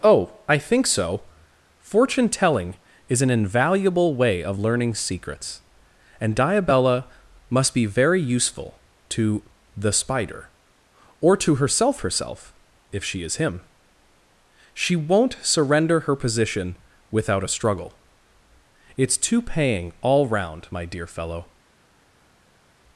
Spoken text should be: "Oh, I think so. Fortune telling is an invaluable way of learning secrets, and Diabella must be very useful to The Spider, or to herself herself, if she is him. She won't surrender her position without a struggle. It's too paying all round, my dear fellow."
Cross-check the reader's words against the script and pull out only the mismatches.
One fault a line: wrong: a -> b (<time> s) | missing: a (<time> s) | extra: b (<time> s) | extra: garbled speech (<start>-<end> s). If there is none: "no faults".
no faults